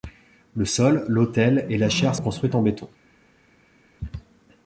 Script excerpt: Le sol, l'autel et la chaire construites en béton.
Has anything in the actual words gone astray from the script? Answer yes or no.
no